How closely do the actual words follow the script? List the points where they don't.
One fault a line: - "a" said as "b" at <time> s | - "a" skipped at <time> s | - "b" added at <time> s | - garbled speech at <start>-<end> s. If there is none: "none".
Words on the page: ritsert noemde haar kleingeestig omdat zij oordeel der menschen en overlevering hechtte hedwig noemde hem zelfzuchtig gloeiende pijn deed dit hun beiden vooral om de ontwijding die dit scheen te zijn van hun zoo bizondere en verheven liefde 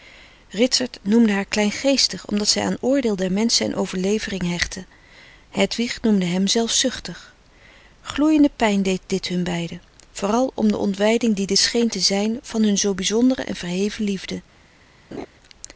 - "aan" added at 2.6 s